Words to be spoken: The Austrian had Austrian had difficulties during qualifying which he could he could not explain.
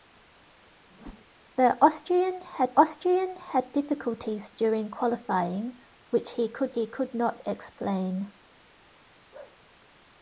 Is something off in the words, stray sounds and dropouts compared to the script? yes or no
yes